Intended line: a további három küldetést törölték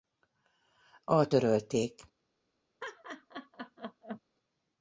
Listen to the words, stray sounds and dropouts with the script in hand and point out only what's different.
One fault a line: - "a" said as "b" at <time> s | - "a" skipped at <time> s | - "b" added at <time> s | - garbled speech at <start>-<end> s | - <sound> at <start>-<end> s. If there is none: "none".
- "további három küldetést" skipped at 1.3 s
- laugh at 2.8-4.2 s